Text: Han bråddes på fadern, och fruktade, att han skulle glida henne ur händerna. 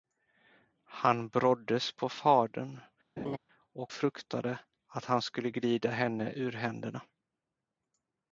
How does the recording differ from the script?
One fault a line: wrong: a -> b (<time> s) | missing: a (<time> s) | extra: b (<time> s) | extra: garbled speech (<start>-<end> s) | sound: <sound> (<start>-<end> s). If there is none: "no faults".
sound: laugh (3.2-3.4 s)